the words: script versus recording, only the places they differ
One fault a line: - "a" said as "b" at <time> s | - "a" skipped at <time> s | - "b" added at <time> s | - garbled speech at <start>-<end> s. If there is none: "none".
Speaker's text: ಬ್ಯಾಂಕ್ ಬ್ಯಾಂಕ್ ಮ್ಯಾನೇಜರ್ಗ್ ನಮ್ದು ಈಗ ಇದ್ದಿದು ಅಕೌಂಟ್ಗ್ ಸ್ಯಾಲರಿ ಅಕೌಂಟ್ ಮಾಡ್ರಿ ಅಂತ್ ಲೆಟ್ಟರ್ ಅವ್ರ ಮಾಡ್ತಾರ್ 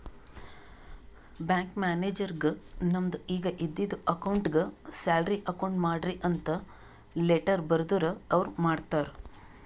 - "ಬ್ಯಾಂಕ್" skipped at 1.8 s
- "ಬರ್ದುರ್" added at 7.7 s